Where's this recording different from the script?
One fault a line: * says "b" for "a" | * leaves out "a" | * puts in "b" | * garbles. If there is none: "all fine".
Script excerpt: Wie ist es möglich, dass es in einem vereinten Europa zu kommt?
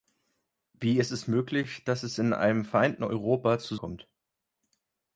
all fine